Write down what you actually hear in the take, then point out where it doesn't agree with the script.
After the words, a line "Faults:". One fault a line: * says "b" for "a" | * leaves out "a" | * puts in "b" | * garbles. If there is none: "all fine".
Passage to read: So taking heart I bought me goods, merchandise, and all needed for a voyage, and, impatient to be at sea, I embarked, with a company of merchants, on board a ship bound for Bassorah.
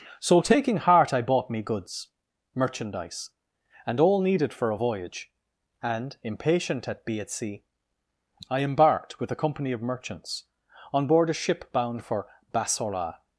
So taking heart I bought me goods, merchandise, and all needed for a voyage, and, impatient at be at sea, I embarked, with a company of merchants, on board a ship bound for Bassorah.
Faults:
* says "at" for "to"